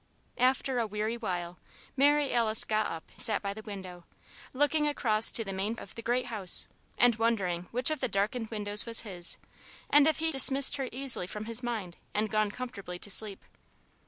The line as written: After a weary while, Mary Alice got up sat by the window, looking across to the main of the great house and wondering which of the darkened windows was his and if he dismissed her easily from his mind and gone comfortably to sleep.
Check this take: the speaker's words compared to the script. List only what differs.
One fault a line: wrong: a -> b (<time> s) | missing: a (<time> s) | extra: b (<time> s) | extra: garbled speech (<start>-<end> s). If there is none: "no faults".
no faults